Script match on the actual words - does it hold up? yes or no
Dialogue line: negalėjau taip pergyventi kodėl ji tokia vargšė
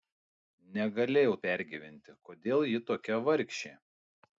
no